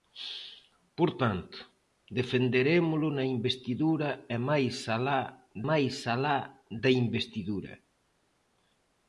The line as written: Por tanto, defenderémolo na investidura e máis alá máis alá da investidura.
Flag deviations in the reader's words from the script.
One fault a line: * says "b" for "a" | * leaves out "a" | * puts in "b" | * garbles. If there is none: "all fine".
all fine